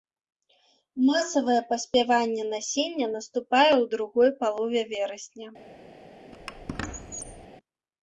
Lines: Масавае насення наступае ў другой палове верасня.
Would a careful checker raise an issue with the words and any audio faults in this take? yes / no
yes